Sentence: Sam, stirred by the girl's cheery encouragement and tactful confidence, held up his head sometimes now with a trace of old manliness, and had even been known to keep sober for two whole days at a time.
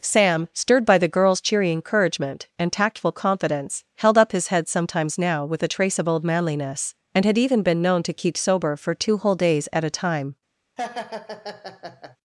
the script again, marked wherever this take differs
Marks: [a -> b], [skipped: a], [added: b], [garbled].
Sam, stirred by the girl's cheery encouragement and tactful confidence, held up his head sometimes now with a trace of old manliness, and had even been known to keep sober for two whole days at a time.